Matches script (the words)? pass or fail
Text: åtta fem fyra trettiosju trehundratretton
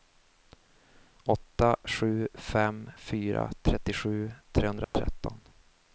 fail